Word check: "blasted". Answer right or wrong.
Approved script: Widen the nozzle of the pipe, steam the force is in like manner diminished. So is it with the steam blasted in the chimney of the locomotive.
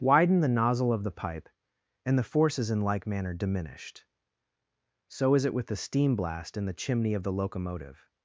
wrong